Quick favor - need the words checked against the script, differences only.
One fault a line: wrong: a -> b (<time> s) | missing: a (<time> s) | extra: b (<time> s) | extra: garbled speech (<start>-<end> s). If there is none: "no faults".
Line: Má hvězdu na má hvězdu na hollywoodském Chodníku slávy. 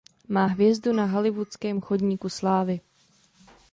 missing: má hvězdu na (1.1 s)